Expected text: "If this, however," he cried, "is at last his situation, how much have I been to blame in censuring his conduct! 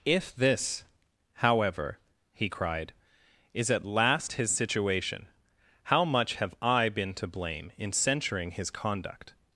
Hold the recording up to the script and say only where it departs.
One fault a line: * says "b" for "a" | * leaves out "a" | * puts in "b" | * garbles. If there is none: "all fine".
all fine